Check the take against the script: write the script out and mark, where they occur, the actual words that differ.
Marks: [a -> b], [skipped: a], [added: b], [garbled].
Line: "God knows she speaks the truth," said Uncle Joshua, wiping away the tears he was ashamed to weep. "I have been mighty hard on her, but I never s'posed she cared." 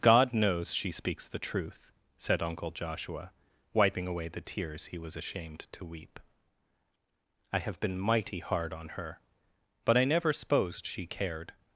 "God knows she speaks the truth," said Uncle Joshua, wiping away the tears he was ashamed to weep. "I have been mighty hard on her, but I never s'posed she cared."